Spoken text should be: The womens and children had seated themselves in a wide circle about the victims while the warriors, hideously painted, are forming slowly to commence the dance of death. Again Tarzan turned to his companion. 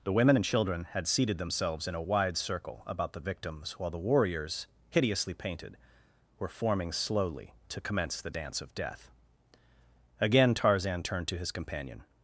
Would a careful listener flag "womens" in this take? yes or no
yes